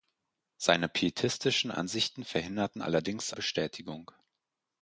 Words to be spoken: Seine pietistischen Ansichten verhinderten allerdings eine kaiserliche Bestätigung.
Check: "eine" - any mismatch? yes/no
yes